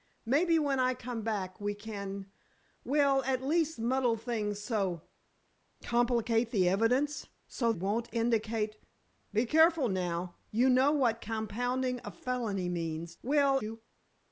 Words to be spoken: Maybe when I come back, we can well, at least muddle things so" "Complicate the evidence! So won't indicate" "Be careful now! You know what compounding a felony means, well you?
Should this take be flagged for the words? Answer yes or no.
no